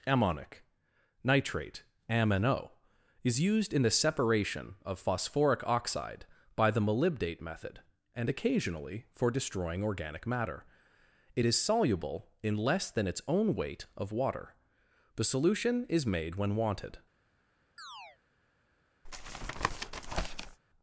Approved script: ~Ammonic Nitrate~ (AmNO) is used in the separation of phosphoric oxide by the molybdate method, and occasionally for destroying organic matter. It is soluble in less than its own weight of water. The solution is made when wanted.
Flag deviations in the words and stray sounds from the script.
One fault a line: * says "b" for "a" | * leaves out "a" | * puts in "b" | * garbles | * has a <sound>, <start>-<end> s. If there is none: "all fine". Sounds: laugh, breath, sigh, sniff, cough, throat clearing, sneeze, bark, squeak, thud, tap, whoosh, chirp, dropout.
* has a chirp, 17.8-18.2 s
* has a tap, 19.0-20.6 s